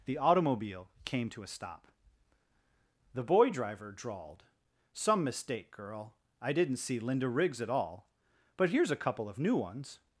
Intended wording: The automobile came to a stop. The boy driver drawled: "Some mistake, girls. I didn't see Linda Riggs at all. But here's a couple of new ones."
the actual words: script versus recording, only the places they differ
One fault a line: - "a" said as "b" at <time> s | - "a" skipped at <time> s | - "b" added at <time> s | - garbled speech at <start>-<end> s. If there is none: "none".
- "girls" said as "girl" at 5.7 s